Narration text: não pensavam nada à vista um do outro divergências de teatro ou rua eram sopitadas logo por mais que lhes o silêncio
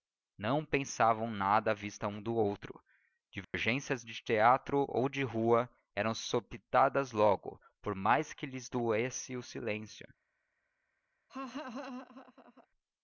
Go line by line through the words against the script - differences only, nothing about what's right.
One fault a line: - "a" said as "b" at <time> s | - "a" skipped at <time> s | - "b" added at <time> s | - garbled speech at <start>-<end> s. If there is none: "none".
- "de" added at 5.1 s
- "doesse" added at 8.7 s